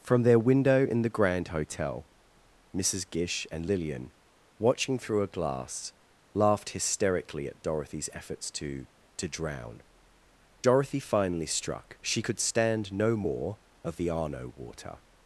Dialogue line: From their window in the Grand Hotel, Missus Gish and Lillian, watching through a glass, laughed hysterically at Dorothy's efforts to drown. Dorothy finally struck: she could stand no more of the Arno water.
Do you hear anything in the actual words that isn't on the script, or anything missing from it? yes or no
yes